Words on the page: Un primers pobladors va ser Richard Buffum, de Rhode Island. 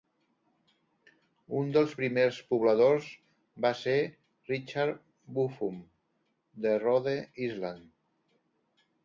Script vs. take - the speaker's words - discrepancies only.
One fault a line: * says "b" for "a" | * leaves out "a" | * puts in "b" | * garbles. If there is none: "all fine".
* puts in "dels"